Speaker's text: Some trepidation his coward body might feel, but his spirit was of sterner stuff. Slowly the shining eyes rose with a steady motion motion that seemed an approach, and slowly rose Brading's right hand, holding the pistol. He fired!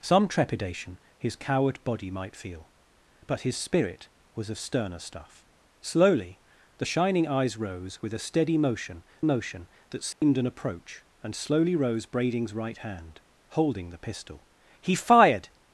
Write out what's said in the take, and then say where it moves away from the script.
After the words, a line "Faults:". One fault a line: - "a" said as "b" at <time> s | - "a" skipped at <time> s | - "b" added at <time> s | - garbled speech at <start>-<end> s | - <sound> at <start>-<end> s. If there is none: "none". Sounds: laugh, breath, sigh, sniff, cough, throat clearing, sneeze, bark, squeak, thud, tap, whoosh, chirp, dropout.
Some trepidation his coward body might feel, but his spirit was of sterner stuff. Slowly the shining eyes rose with a steady motion motion that seemed an approach, and slowly rose Brading's right hand, holding the pistol. He fired!
Faults:
- dropout at 10.1-10.2 s